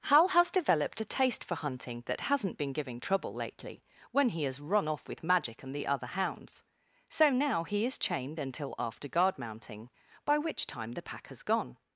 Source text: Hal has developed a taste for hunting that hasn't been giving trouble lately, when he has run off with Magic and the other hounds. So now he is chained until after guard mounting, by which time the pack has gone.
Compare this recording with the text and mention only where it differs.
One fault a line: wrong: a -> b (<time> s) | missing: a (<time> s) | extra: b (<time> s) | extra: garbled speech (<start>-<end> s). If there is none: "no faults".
no faults